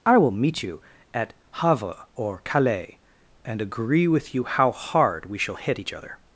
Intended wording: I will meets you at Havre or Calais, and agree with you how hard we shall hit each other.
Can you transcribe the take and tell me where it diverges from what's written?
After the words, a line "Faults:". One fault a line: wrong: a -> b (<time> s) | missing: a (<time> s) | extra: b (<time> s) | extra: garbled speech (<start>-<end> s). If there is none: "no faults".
I will meet you at Havre or Calais, and agree with you how hard we shall hit each other.
Faults:
wrong: meets -> meet (0.3 s)